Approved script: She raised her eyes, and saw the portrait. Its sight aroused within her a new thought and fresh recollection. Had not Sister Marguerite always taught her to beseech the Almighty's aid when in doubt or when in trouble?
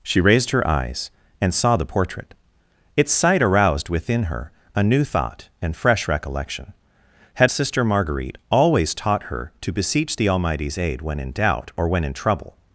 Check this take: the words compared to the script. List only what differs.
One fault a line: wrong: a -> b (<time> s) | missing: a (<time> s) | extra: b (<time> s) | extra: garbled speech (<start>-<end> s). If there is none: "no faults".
missing: not (7.5 s)